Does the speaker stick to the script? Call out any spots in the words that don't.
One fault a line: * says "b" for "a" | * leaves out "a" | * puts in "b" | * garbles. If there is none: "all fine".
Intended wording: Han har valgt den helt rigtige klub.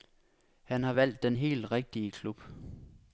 all fine